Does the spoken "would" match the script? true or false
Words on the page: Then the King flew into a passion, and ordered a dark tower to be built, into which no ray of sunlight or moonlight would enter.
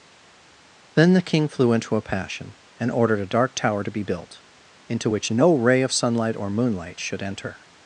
false